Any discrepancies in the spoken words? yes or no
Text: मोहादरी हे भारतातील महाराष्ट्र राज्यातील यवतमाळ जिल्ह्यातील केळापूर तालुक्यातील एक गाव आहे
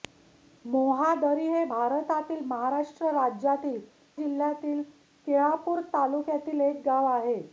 yes